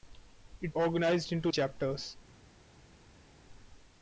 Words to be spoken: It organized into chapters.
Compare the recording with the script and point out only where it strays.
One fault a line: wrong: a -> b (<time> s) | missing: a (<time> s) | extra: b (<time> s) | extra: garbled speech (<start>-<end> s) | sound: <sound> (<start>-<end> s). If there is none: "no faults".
no faults